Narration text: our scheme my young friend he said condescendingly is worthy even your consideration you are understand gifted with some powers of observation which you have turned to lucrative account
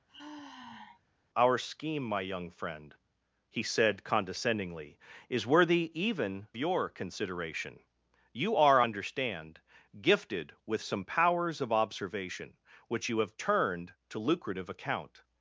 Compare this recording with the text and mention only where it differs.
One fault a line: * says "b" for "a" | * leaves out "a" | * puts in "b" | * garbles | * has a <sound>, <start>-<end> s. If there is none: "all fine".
* has a sigh, 0.1-1.0 s